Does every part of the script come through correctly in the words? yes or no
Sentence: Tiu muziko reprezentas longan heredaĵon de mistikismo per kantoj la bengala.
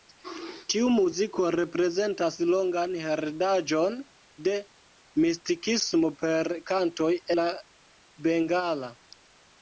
yes